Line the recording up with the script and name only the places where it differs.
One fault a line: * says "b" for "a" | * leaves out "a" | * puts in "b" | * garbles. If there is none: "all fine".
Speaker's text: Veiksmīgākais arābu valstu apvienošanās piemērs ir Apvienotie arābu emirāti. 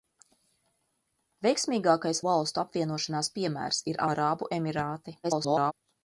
* leaves out "arābu"
* leaves out "Apvienotie"
* garbles